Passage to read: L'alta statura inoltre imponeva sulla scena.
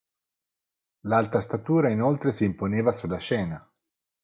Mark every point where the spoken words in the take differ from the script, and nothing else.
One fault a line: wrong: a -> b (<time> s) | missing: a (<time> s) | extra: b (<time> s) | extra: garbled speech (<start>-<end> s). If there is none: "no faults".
extra: si (2.3 s)